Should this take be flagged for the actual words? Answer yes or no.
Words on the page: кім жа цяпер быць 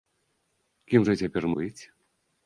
no